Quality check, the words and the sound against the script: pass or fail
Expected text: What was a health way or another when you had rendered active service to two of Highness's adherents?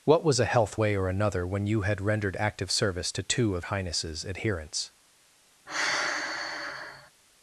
fail